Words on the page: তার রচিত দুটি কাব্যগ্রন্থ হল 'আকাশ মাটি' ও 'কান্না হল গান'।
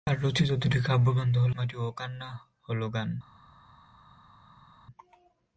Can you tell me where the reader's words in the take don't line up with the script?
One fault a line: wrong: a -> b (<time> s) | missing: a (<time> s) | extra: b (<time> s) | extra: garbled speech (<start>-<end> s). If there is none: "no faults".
missing: আকাশ (1.5 s)